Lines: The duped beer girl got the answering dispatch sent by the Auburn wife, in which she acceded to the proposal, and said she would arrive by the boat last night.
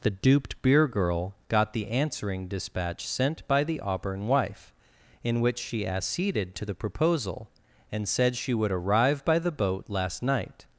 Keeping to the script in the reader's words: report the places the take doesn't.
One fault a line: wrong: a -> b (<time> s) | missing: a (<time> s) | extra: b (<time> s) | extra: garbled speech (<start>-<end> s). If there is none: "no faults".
no faults